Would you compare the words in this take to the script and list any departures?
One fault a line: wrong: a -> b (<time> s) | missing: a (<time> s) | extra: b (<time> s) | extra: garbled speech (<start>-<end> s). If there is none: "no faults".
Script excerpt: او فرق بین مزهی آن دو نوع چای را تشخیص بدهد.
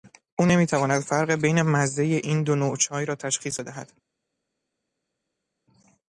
extra: نمیتواند (0.5 s)
wrong: آن -> این (2.2 s)